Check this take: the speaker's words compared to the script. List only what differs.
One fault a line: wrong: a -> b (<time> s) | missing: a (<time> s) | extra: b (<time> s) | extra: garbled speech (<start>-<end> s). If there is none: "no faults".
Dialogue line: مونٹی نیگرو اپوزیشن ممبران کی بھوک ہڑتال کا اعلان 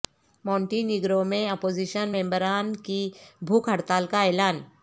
extra: میں (1.3 s)